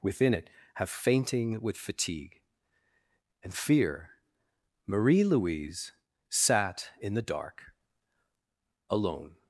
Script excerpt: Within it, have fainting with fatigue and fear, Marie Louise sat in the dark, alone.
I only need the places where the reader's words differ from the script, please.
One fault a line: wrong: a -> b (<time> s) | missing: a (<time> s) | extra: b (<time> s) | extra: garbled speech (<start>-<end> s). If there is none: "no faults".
no faults